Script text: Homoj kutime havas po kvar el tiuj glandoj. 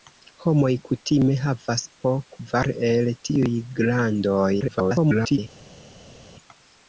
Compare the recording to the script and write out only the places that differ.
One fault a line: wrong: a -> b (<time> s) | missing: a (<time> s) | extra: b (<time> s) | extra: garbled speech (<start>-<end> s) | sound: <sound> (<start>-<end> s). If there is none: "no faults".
extra: garbled speech (4.6-5.4 s)